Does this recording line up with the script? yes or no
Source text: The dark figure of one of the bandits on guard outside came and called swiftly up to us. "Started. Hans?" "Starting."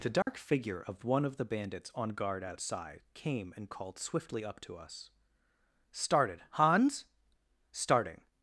yes